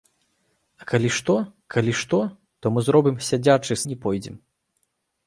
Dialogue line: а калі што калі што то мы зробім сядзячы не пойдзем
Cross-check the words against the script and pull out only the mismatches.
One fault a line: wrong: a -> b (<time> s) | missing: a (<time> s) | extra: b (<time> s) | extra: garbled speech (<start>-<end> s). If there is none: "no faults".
no faults